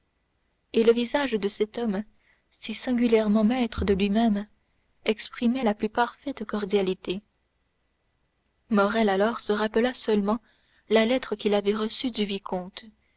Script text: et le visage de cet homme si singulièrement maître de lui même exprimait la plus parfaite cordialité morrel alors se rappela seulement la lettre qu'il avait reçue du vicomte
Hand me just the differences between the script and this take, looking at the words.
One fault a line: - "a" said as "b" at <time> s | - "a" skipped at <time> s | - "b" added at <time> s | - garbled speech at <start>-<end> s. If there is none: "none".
none